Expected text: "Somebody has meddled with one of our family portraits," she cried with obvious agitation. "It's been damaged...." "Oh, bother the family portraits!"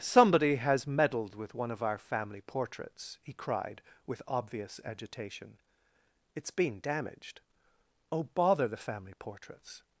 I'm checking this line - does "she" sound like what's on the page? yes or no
no